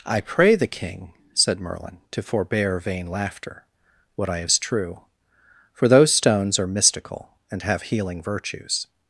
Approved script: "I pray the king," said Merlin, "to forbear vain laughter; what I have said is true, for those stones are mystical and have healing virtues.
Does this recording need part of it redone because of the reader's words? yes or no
yes